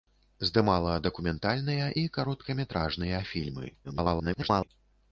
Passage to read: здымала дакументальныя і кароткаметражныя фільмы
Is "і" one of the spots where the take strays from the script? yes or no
no